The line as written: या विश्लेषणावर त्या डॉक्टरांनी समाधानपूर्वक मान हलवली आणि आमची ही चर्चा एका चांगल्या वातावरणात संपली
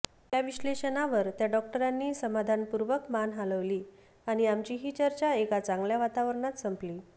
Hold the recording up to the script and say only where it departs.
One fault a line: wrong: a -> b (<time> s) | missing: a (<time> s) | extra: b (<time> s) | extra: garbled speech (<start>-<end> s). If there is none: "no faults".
no faults